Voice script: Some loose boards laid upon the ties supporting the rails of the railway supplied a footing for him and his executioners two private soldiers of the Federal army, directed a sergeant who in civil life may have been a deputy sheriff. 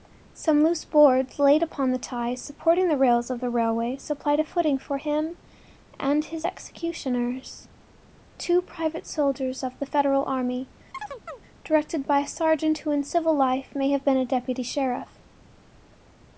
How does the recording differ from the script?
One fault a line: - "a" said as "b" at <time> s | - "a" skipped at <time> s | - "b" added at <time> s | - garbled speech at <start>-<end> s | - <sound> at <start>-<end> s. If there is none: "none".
- chirp at 10.9-11.4 s
- "by" added at 12.0 s